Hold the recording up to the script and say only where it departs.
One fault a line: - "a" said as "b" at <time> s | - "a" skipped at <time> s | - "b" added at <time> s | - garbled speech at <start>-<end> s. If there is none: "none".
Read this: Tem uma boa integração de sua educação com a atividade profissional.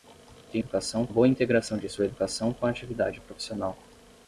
- "uma" said as "educação" at 0.6 s